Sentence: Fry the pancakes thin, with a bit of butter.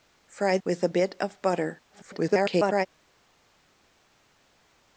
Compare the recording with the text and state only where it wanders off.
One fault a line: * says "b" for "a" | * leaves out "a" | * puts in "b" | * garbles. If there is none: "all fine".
* leaves out "the pancakes thin"
* garbles